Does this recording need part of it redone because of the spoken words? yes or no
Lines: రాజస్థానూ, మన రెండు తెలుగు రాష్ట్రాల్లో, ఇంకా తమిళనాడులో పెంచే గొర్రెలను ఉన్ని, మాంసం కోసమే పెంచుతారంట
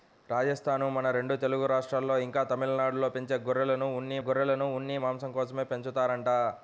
yes